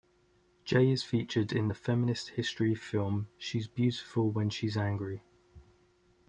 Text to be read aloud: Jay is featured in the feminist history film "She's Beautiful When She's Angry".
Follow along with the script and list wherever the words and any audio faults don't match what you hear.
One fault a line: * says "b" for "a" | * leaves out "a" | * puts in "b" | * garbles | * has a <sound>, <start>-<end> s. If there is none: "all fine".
all fine